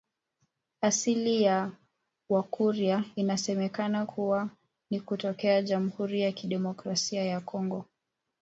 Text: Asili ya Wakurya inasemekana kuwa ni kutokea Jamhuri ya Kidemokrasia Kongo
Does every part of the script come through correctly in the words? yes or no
no